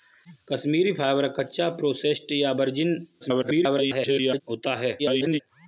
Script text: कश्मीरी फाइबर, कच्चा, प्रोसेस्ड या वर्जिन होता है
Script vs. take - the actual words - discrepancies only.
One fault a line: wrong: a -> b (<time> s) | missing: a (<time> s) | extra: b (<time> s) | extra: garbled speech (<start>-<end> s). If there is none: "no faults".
extra: garbled speech (3.2-4.4 s)
extra: garbled speech (5.0-5.4 s)